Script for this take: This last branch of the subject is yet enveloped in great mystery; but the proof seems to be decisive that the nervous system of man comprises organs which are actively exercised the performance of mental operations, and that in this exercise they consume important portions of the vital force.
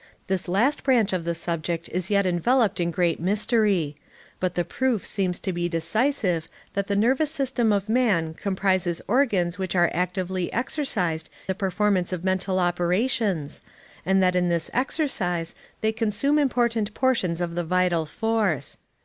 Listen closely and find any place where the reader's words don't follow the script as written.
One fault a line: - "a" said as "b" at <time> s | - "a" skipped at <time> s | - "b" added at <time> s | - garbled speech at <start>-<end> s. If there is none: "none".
none